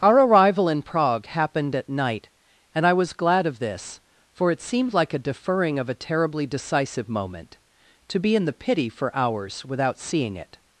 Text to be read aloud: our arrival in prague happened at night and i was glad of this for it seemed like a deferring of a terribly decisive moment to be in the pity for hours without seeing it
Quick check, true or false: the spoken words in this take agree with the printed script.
true